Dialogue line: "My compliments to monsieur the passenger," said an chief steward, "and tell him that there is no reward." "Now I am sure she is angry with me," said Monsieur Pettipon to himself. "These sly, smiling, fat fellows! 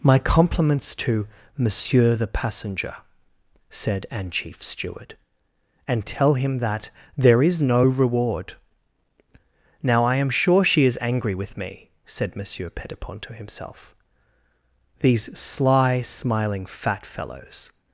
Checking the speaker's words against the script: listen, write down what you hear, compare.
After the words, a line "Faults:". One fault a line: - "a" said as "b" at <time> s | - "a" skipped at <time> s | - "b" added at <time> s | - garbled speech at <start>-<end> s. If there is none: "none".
"My compliments to monsieur the passenger," said an chief steward, "and tell him that there is no reward." "Now I am sure she is angry with me," said Monsieur Pettipon to himself. "These sly, smiling, fat fellows!
Faults:
none